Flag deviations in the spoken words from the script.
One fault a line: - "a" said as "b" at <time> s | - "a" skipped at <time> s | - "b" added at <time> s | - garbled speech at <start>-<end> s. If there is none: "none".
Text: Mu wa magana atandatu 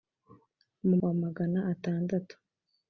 none